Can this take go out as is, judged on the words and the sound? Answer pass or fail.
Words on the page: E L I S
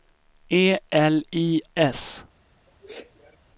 fail